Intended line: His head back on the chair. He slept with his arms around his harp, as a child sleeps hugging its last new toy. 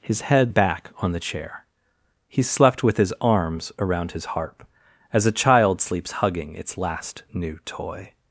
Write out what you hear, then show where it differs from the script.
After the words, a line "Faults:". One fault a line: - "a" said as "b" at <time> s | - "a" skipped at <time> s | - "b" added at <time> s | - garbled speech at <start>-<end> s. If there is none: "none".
His head back on the chair. He slept with his arms around his harp, as a child sleeps hugging its last new toy.
Faults:
none